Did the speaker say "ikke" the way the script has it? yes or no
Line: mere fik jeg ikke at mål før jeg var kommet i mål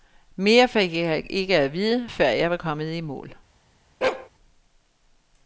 yes